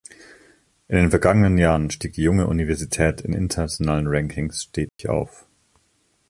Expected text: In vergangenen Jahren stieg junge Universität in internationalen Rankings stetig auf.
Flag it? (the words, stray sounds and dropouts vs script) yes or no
yes